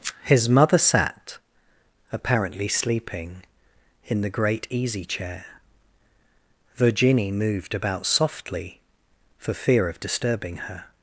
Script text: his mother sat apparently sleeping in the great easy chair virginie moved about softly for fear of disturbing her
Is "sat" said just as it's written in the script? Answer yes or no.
yes